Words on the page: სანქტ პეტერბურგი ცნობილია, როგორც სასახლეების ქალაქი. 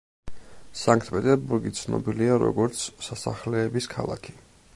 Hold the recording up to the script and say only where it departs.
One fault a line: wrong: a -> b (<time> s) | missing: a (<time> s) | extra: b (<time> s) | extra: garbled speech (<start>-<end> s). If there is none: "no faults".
no faults